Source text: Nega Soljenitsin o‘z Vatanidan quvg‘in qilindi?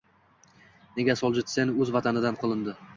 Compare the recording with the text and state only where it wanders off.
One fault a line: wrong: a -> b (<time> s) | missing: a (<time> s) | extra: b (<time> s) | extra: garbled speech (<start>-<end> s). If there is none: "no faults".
missing: quvg‘in (2.4 s)